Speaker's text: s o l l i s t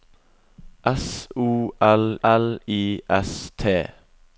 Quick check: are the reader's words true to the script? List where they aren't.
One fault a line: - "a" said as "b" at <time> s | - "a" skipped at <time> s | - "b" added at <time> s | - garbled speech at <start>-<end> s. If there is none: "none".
none